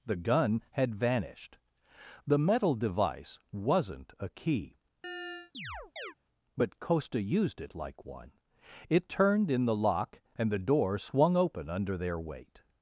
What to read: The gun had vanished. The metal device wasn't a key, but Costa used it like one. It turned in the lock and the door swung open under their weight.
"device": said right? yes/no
yes